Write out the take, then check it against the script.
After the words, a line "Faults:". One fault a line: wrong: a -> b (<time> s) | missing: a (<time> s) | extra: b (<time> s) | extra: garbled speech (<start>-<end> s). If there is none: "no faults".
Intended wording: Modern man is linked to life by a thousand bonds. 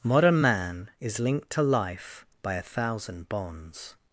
Modern man is linked to life by a thousand bonds.
Faults:
no faults